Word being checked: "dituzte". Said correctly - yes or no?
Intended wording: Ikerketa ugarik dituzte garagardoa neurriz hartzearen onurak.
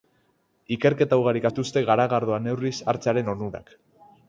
yes